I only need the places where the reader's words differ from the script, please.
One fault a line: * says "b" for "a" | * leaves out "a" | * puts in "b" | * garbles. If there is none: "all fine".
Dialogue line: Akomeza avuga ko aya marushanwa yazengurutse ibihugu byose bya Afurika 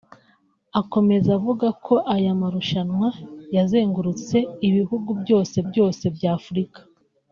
* puts in "byose"